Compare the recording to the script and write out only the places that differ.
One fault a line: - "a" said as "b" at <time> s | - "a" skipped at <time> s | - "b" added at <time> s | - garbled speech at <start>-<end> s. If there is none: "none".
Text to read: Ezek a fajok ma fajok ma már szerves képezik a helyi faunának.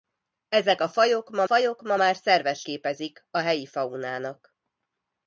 none